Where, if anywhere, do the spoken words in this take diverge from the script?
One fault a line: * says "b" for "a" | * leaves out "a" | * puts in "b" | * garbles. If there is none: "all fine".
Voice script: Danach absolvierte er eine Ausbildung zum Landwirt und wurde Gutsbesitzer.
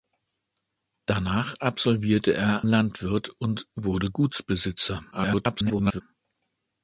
* leaves out "eine Ausbildung zum"
* garbles